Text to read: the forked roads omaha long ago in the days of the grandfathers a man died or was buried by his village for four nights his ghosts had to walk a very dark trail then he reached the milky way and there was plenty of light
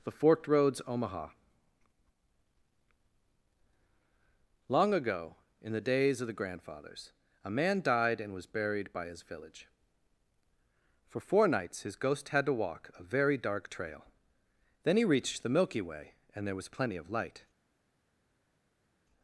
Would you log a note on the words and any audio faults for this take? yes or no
yes